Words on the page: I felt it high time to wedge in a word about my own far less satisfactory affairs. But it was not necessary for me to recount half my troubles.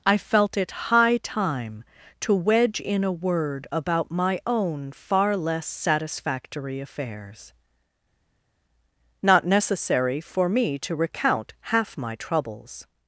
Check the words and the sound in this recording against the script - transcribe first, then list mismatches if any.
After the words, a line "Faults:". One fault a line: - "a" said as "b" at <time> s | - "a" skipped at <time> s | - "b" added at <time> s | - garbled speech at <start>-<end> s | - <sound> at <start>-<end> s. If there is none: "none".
I felt it high time to wedge in a word about my own far less satisfactory affairs. not necessary for me to recount half my troubles.
Faults:
- "But it was" skipped at 7.5 s